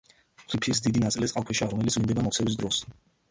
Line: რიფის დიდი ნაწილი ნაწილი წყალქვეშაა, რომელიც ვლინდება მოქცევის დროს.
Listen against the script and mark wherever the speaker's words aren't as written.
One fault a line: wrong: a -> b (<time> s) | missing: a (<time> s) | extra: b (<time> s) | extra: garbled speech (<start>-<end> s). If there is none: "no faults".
missing: ნაწილი (1.3 s)